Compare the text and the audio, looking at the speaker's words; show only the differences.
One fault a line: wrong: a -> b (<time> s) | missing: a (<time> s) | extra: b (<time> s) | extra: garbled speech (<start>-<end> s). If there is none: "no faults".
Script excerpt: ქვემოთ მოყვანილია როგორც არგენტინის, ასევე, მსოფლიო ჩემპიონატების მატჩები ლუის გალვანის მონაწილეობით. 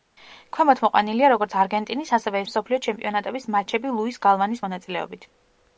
no faults